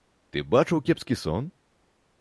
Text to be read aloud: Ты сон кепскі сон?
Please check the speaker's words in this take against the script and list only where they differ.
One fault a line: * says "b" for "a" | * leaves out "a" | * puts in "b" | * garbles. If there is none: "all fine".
* says "бачыў" for "сон"